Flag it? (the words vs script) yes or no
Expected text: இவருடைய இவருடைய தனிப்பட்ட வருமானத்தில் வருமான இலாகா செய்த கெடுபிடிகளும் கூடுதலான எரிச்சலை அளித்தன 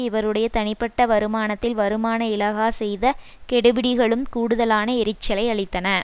yes